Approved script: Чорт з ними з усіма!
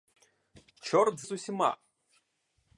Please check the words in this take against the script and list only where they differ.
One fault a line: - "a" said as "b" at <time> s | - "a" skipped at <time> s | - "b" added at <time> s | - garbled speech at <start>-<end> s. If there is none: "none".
- "ними" skipped at 1.3 s